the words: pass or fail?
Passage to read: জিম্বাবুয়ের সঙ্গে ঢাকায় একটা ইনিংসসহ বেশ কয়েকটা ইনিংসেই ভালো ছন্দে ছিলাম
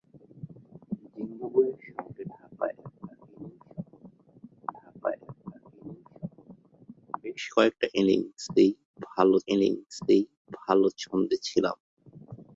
fail